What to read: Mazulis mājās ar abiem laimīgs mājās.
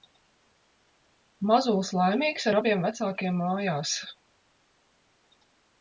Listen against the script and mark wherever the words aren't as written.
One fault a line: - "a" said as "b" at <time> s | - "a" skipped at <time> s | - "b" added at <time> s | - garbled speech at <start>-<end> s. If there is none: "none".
- "mājās" said as "laimīgs" at 2.0 s
- "laimīgs" said as "vecākiem" at 2.9 s